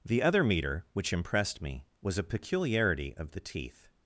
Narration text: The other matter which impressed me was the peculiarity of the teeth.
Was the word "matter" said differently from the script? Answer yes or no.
yes